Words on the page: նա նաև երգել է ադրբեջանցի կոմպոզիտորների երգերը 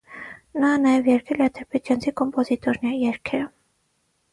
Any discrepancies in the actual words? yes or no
no